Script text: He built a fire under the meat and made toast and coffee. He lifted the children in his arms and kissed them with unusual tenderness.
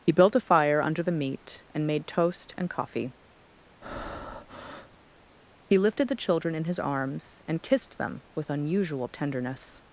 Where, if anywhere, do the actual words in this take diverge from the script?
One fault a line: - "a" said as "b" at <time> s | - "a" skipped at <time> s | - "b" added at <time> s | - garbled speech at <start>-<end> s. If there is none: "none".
none